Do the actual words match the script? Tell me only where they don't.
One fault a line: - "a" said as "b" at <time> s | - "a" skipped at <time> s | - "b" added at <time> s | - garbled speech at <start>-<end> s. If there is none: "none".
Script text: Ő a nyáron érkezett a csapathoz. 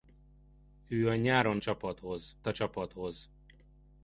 - "érkezett" said as "csapathoz" at 1.6 s